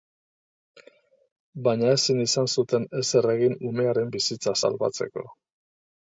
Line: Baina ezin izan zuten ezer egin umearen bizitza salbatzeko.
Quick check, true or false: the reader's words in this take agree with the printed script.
true